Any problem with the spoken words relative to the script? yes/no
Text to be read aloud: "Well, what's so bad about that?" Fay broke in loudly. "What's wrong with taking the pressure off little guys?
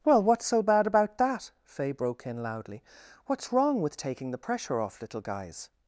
no